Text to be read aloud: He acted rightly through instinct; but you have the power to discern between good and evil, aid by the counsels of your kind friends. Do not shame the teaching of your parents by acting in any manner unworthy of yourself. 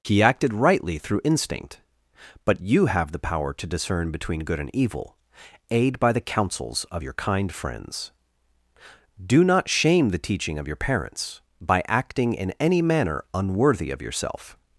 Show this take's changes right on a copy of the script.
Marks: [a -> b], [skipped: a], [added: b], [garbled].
He acted rightly through instinct; but you have the power to discern between good and evil, aid by the counsels of your kind friends. Do not shame the teaching of your parents by acting in any manner unworthy of yourself.